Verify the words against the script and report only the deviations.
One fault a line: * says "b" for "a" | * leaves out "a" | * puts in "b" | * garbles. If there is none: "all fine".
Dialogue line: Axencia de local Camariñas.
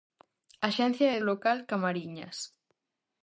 all fine